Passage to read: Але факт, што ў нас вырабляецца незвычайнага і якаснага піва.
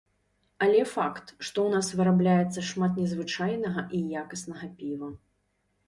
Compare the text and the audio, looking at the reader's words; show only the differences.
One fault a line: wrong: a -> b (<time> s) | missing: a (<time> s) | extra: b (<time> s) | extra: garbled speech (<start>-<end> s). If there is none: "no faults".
extra: шмат (2.7 s)